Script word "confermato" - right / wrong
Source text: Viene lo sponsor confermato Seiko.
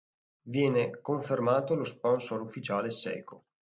wrong